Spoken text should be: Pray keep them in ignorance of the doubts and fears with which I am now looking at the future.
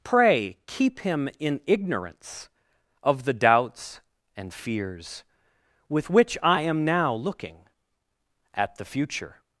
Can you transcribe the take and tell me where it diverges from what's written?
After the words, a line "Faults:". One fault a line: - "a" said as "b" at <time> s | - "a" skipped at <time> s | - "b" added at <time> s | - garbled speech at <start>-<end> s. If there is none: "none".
Pray keep him in ignorance of the doubts and fears with which I am now looking at the future.
Faults:
- "them" said as "him" at 1.0 s